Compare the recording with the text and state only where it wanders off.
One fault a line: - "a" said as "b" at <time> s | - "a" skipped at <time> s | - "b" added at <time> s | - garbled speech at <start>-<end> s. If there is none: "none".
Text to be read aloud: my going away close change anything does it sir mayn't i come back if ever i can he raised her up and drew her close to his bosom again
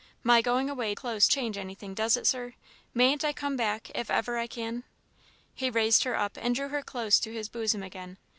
none